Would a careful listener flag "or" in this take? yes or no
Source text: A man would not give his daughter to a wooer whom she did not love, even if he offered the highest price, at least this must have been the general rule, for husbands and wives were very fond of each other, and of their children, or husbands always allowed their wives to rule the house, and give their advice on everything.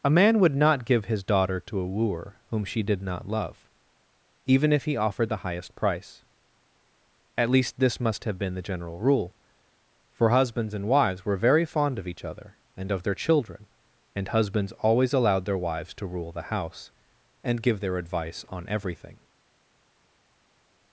yes